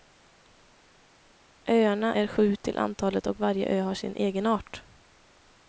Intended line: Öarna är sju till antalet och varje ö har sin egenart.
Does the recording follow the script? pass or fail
pass